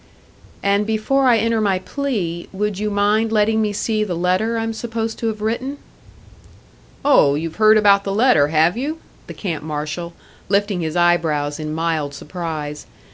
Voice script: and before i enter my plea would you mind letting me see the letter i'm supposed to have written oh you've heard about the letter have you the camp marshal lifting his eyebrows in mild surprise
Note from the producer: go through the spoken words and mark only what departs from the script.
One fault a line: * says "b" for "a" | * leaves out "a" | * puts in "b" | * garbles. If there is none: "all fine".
all fine